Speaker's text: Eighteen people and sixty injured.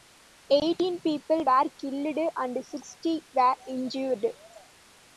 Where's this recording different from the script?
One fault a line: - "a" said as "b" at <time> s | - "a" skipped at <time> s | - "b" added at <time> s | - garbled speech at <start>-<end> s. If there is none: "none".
- "were killed" added at 1.4 s
- "were" added at 3.3 s